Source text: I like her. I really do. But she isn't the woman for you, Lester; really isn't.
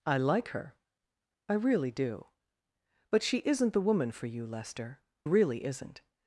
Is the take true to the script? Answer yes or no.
yes